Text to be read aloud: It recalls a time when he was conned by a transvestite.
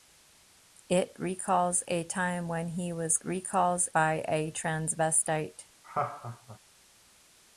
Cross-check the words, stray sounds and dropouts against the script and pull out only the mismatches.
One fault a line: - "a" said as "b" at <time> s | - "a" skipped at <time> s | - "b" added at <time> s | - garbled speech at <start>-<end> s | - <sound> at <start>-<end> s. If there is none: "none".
- "conned" said as "recalls" at 3.2 s
- laugh at 5.8-6.6 s